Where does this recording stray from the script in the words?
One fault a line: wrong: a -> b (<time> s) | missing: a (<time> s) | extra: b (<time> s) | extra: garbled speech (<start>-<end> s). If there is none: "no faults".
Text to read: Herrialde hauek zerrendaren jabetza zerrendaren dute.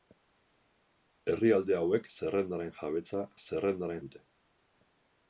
no faults